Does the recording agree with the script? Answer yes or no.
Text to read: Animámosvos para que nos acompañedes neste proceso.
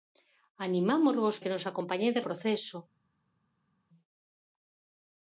no